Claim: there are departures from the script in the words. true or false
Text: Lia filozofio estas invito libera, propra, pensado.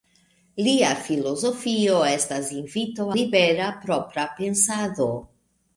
false